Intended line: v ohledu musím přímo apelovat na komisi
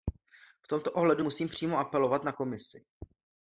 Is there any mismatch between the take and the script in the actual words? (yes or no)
yes